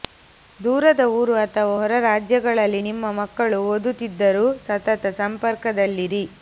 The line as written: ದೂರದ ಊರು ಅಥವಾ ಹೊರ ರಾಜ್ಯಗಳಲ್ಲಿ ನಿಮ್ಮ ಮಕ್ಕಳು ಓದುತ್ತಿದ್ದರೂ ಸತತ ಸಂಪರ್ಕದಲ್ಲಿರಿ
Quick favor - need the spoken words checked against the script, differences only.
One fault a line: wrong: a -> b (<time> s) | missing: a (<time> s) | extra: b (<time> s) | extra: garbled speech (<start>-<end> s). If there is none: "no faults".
no faults